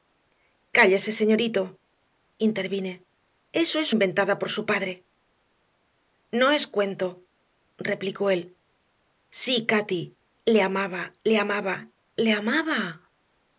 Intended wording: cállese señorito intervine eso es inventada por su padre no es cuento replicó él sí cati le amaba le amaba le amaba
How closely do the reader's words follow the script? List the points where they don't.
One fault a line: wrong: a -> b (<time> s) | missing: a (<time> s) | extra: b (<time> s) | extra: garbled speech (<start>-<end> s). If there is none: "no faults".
no faults